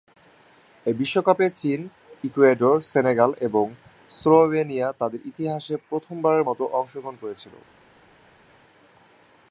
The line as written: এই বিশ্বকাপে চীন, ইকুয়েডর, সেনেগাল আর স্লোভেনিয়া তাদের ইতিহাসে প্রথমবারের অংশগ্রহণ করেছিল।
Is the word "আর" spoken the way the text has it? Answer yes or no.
no